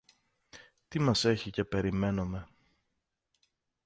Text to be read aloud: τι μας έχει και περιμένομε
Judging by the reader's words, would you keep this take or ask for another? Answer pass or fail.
pass